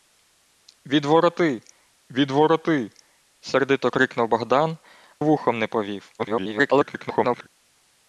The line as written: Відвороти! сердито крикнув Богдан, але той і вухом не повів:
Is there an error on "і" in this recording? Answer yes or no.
yes